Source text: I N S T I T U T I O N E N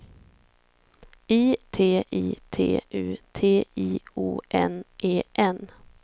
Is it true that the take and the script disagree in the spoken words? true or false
true